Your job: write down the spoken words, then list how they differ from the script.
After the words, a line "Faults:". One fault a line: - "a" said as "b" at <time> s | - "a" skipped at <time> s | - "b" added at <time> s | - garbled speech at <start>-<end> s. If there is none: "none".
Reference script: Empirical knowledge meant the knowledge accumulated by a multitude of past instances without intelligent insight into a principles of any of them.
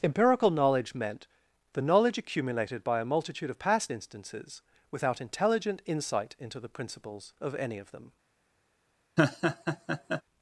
Empirical knowledge meant the knowledge accumulated by a multitude of past instances without intelligent insight into the principles of any of them.
Faults:
- "a" said as "the" at 6.6 s